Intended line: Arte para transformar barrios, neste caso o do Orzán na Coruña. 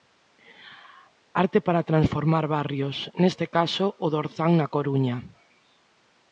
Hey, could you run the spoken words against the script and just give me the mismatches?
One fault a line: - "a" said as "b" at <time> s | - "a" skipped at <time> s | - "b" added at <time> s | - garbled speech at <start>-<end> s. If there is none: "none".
none